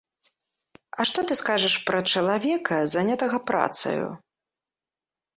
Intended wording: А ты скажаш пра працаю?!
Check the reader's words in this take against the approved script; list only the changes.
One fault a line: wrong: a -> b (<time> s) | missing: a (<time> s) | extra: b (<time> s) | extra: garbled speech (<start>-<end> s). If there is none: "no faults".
extra: што (1.1 s)
extra: чалавека занятага (2.1 s)